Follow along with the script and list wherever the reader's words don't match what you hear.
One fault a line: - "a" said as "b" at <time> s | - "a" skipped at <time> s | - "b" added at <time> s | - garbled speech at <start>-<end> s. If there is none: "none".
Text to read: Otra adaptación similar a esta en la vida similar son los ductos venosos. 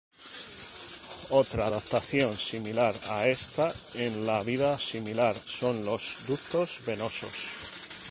none